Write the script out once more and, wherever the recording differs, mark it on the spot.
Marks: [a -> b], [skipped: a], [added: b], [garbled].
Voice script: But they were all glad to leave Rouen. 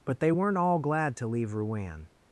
But they [were -> weren't] all glad to leave Rouen.